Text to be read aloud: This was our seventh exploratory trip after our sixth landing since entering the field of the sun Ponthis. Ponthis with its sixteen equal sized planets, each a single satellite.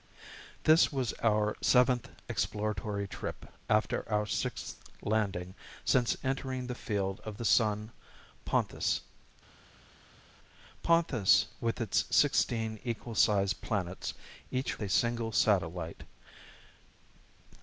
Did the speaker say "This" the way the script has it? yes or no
yes